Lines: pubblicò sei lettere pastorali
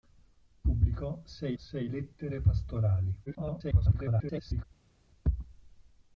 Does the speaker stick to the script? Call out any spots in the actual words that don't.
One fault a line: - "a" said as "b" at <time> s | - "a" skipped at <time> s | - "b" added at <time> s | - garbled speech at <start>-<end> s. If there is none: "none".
- "sei" added at 1.6 s
- garbled speech at 3.3-4.6 s